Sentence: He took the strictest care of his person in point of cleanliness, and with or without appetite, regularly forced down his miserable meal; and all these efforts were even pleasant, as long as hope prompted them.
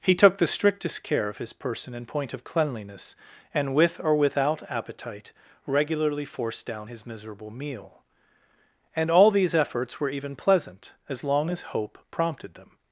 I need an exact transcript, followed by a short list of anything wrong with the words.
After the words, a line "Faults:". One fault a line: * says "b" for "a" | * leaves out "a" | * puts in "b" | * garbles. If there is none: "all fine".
He took the strictest care of his person in point of cleanliness, and with or without appetite, regularly forced down his miserable meal; and all these efforts were even pleasant, as long as hope prompted them.
Faults:
all fine